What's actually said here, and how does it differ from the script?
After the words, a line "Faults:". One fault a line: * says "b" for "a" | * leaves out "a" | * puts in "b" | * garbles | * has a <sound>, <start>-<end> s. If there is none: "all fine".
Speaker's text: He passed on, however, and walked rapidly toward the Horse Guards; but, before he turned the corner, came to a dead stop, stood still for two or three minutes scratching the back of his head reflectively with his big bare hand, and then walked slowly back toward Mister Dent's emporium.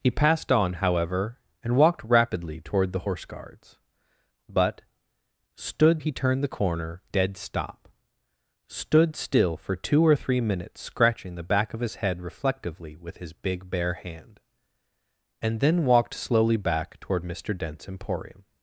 He passed on, however, and walked rapidly toward the Horse Guards; but, stood he turned the corner, dead stop, stood still for two or three minutes scratching the back of his head reflectively with his big bare hand, and then walked slowly back toward Mister Dent's emporium.
Faults:
* says "stood" for "before"
* leaves out "came to a"